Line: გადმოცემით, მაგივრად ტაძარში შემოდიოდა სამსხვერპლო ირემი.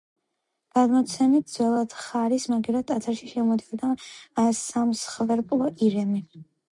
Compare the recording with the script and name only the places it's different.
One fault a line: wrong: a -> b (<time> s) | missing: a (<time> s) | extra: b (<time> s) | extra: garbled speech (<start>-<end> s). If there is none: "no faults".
extra: ძველად ხარის (1.6 s)